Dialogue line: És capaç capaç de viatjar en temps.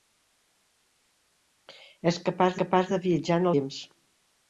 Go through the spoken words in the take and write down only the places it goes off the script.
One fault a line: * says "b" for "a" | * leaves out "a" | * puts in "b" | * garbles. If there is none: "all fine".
all fine